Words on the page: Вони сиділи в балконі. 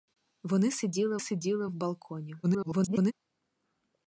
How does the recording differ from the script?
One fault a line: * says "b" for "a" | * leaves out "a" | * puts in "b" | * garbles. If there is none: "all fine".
* puts in "сиділи"
* garbles